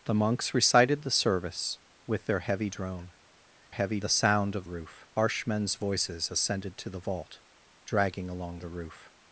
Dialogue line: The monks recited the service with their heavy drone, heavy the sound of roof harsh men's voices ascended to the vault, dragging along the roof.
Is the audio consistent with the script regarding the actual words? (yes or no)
yes